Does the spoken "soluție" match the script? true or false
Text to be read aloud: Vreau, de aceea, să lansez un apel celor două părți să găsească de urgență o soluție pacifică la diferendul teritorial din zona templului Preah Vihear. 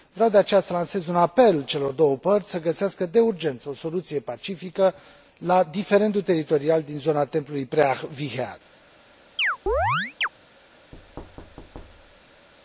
true